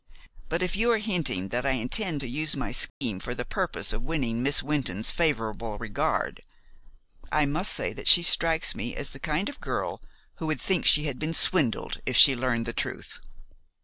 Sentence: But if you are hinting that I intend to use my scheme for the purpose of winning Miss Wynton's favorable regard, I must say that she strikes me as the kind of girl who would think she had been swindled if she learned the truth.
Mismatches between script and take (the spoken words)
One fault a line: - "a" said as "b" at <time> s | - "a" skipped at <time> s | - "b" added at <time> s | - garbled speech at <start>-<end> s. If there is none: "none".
none